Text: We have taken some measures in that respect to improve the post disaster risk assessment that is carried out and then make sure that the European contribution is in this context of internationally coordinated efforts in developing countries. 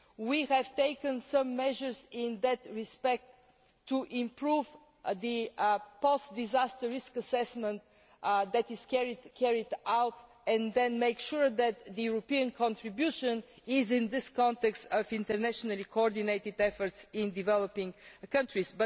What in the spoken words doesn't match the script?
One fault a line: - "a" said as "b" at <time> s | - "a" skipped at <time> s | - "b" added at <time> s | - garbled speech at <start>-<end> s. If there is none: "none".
none